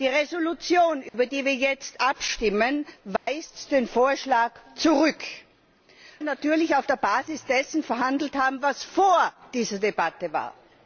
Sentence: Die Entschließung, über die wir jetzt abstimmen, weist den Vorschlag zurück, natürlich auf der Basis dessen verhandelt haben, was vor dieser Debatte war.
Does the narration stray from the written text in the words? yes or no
no